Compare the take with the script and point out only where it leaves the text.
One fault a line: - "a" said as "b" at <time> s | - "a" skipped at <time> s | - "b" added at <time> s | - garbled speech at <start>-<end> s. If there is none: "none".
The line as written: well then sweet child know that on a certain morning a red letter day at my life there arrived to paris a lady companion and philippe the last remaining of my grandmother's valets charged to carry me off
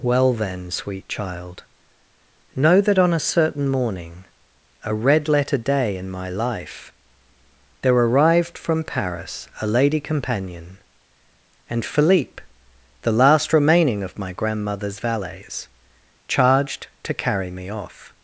- "at" said as "in" at 6.0 s
- "to" said as "from" at 8.6 s